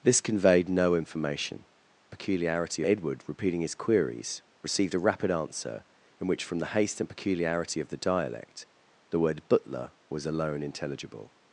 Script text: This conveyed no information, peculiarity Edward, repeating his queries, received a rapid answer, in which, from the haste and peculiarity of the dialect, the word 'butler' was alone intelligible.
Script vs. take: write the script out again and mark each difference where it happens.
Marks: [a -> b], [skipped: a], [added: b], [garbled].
This conveyed no information, peculiarity Edward, repeating his queries, received a rapid answer, in which, from the haste and peculiarity of the dialect, the word 'butler' was alone intelligible.